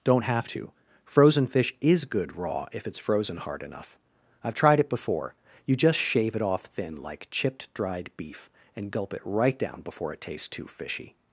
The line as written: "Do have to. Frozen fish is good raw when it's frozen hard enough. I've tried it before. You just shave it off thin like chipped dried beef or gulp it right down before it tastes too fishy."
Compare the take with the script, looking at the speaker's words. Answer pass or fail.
fail